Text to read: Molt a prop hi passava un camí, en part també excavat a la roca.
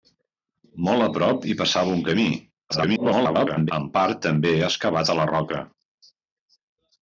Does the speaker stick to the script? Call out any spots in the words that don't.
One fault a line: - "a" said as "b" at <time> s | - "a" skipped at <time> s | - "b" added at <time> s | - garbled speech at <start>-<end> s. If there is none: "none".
- garbled speech at 2.7-3.7 s